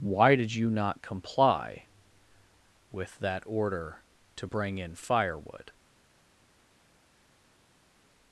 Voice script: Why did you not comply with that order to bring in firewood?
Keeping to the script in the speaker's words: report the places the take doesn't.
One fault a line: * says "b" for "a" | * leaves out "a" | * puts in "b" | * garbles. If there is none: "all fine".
all fine